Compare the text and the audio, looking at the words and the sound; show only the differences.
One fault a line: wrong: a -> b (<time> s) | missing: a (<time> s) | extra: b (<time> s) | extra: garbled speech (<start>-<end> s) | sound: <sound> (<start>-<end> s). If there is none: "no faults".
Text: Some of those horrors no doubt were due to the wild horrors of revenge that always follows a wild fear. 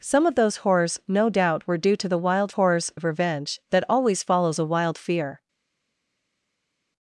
no faults